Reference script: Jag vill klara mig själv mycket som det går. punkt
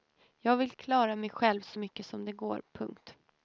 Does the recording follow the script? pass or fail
fail